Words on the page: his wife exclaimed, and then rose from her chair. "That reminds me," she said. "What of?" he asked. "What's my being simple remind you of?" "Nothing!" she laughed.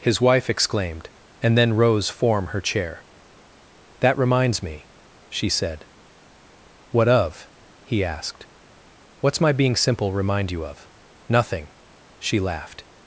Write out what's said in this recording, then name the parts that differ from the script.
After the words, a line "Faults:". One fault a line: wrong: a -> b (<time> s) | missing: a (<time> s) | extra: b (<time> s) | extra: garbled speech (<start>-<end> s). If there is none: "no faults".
his wife exclaimed, and then rose form her chair. "That reminds me," she said. "What of?" he asked. "What's my being simple remind you of?" "Nothing!" she laughed.
Faults:
wrong: from -> form (2.1 s)